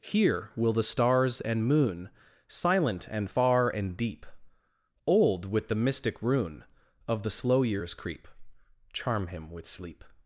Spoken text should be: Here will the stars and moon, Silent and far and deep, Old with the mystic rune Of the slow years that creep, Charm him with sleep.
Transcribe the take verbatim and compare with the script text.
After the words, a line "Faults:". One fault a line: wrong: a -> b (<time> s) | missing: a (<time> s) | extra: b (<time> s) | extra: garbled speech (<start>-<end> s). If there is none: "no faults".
Here will the stars and moon, Silent and far and deep, Old with the mystic rune Of the slow years creep, Charm him with sleep.
Faults:
missing: that (7.9 s)